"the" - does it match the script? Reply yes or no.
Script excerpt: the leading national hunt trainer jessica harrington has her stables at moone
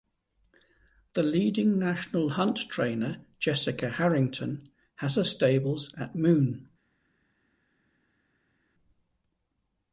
yes